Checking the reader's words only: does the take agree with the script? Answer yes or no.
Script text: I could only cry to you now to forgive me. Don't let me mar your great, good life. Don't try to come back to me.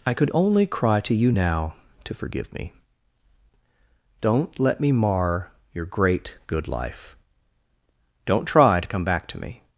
yes